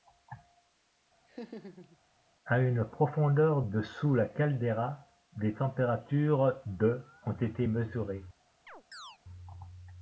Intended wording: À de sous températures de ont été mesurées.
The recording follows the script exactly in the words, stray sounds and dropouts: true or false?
false